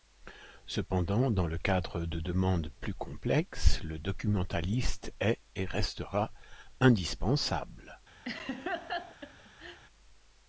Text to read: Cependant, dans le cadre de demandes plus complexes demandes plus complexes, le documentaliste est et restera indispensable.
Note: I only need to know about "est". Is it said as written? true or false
true